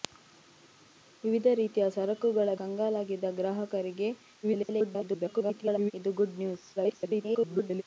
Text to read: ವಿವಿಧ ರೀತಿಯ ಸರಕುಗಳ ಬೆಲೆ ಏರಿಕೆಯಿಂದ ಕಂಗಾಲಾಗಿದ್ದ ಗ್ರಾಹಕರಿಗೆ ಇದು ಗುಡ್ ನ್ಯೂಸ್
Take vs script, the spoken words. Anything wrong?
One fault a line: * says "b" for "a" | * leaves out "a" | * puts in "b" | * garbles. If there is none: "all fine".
* leaves out "ಬೆಲೆ ಏರಿಕೆಯಿಂದ"
* garbles
* garbles